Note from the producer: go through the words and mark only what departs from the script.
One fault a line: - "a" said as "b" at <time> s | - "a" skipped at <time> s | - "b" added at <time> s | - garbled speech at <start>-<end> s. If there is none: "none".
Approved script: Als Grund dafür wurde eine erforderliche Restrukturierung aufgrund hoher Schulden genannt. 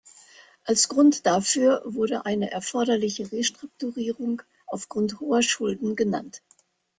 none